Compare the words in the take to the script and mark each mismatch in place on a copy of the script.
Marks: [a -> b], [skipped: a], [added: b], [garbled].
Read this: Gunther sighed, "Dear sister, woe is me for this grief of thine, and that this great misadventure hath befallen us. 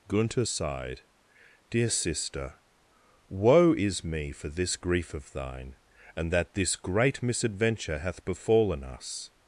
Gunther sighed, "Dear sister, woe is me for this grief of thine, and that this great misadventure hath befallen us.